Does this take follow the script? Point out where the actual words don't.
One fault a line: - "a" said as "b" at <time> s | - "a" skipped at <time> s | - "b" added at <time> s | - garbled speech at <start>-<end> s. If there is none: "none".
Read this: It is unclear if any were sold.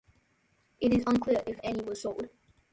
none